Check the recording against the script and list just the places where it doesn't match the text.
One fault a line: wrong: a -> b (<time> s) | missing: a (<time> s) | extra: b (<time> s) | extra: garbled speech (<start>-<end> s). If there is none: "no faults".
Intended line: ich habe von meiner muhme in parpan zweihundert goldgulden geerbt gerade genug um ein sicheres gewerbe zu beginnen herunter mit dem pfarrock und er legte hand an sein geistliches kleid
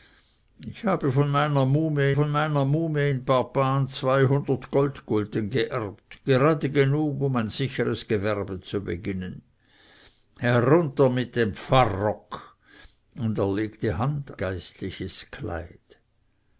extra: von meiner muhme (2.1 s)
missing: an sein (14.4 s)